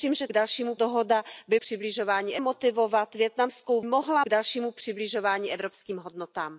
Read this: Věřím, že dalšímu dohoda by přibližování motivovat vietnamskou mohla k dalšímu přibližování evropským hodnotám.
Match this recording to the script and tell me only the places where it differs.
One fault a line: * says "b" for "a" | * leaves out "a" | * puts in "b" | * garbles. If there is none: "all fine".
all fine